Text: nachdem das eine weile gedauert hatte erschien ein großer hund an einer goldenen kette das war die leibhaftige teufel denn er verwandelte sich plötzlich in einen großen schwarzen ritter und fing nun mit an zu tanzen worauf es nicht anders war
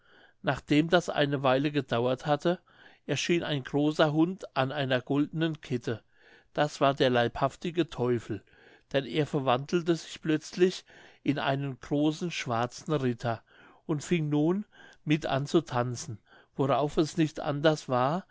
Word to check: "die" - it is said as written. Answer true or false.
false